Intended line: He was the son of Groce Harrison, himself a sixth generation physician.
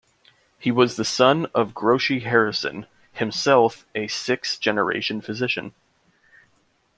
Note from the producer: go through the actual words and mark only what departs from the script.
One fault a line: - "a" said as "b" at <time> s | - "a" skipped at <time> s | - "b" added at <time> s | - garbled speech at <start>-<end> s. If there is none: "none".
none